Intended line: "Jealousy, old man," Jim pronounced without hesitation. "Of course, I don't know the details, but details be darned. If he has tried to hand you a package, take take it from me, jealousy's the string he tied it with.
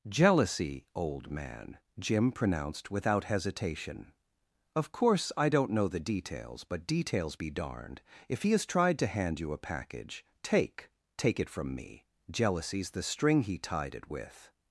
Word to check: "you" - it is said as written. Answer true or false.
true